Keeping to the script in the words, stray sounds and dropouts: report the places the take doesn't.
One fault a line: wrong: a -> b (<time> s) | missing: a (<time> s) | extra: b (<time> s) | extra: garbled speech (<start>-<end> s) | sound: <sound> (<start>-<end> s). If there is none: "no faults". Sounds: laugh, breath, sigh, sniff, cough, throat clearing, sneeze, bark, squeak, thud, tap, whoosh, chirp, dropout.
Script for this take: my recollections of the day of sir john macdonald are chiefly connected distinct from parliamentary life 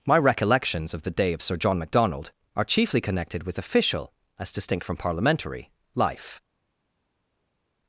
extra: with official as (3.4 s)